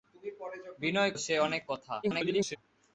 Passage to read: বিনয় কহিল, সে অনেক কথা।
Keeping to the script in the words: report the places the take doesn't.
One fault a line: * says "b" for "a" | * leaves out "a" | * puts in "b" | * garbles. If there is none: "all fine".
* leaves out "কহিল"
* garbles